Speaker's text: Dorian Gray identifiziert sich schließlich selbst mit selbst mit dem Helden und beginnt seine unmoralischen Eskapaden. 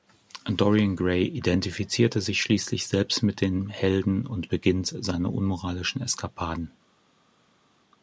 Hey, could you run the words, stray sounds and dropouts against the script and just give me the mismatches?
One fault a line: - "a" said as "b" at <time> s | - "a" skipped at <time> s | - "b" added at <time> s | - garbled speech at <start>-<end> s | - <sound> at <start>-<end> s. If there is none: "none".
- "selbst mit" skipped at 3.4 s